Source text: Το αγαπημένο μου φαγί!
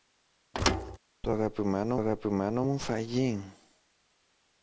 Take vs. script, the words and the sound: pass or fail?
fail